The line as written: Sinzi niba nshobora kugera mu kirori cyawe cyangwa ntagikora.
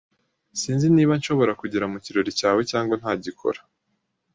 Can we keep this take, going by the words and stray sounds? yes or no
yes